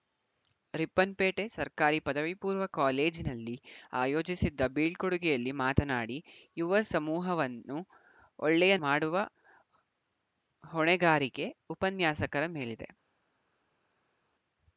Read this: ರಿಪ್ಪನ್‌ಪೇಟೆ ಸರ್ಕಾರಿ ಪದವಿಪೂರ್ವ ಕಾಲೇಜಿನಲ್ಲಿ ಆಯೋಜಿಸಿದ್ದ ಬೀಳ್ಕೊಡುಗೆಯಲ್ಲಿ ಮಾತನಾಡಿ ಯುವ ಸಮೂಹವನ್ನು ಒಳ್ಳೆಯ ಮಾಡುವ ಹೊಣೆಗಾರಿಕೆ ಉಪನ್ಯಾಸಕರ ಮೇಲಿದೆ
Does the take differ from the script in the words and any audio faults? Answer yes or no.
no